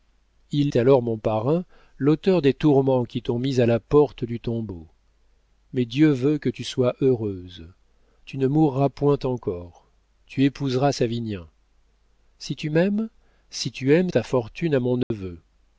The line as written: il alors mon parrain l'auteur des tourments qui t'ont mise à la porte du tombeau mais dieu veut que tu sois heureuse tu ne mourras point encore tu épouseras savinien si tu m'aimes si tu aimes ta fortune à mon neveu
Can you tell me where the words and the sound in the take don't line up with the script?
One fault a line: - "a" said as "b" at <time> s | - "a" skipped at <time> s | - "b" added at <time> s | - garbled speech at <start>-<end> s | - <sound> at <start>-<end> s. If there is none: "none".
- dropout at 15.0-15.1 s